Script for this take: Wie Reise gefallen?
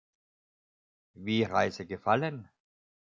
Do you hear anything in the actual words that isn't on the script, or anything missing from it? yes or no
no